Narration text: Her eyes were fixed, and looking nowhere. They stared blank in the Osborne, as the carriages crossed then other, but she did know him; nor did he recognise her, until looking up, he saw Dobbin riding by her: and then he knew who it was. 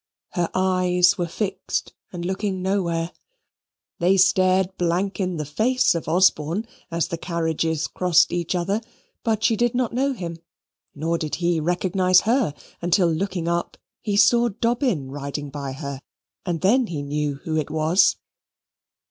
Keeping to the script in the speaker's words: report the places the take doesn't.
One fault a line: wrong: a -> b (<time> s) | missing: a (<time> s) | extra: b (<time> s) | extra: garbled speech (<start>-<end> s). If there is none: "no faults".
extra: face of (5.5 s)
wrong: then -> each (8.3 s)
extra: not (9.8 s)